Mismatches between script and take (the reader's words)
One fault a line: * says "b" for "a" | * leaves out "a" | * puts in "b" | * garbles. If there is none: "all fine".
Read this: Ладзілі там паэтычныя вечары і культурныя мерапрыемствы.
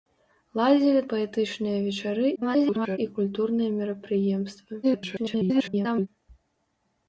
* leaves out "там"
* garbles
* garbles